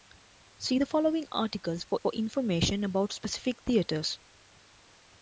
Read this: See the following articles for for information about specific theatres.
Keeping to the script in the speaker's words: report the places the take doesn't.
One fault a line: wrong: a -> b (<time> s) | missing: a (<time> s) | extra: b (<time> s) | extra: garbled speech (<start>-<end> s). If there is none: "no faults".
no faults